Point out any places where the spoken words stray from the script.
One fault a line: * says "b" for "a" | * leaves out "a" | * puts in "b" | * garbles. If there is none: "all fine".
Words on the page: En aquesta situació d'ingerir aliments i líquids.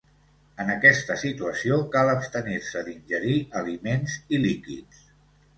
* puts in "cal abstenir se"